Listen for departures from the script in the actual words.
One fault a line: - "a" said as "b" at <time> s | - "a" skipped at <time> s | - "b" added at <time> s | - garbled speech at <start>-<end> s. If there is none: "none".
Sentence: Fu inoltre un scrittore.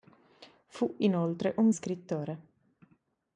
none